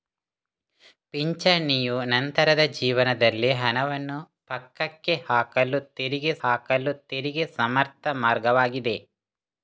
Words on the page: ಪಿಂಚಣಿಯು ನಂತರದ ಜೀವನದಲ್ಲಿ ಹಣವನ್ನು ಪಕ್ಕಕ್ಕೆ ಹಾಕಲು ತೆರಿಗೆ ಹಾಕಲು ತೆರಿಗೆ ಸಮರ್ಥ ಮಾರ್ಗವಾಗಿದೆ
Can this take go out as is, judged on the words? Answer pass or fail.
pass